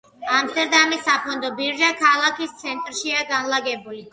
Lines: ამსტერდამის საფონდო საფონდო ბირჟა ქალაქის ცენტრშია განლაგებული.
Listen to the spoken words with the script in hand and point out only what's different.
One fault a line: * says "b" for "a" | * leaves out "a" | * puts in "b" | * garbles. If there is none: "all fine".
* leaves out "საფონდო"